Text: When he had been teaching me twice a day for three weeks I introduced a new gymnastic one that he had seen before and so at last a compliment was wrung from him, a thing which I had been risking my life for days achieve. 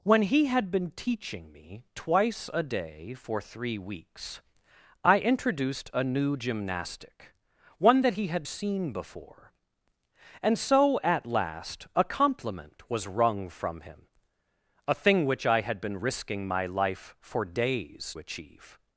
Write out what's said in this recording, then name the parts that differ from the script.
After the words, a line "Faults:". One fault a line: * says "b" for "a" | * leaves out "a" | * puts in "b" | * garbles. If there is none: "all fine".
When he had been teaching me twice a day for three weeks I introduced a new gymnastic one that he had seen before and so at last a compliment was wrung from him, a thing which I had been risking my life for days achieve.
Faults:
all fine